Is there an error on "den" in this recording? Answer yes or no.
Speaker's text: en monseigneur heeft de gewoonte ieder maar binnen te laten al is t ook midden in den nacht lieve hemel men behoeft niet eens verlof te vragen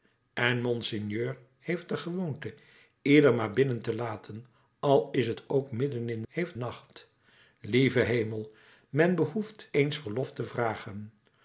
yes